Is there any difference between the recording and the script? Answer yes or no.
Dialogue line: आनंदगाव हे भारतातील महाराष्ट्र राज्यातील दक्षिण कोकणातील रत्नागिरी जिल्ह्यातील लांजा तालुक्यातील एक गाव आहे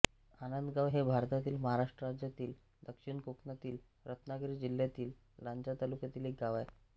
no